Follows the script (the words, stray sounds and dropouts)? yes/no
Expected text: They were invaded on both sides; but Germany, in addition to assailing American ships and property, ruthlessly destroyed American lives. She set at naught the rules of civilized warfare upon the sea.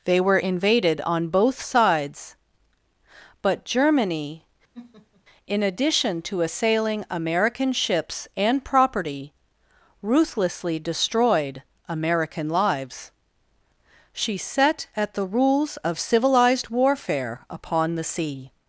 no